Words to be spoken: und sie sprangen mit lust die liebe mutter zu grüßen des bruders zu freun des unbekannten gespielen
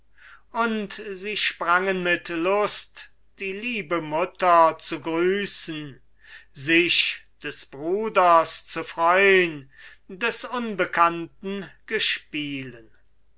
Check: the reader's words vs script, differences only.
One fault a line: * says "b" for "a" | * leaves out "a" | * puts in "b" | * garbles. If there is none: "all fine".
* puts in "sich"